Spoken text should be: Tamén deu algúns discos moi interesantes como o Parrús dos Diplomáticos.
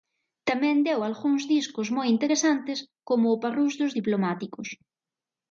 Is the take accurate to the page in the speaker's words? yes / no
yes